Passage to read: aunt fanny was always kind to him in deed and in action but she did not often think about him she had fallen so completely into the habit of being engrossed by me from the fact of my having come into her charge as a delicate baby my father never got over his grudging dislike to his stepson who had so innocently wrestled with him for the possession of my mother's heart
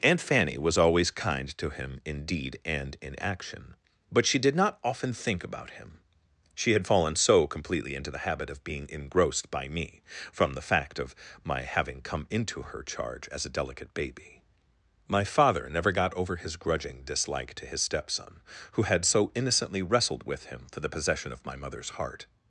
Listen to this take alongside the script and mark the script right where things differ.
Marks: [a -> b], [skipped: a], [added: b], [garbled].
aunt fanny was always kind to him in deed and in action but she did not often think about him she had fallen so completely into the habit of being engrossed by me from the fact of my having come into her charge as a delicate baby my father never got over his grudging dislike to his stepson who had so innocently wrestled with him for the possession of my mother's heart